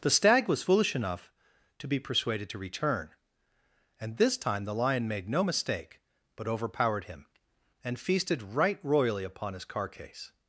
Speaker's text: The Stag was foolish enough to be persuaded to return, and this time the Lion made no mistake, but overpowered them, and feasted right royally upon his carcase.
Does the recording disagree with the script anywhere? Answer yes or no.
yes